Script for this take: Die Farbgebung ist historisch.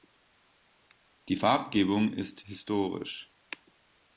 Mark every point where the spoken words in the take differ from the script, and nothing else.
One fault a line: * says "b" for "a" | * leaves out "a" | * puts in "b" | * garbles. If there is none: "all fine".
all fine